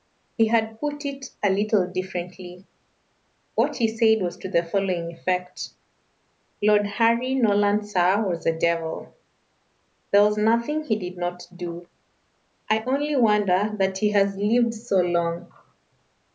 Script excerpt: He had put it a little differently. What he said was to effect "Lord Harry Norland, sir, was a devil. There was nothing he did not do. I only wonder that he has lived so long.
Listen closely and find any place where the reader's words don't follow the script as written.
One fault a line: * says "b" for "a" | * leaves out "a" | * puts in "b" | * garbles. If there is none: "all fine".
* puts in "the following"